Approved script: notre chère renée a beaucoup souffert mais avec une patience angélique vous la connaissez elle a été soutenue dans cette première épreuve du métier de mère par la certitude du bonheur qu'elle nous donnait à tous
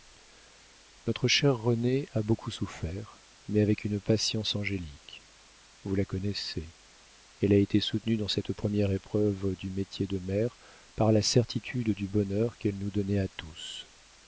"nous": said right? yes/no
yes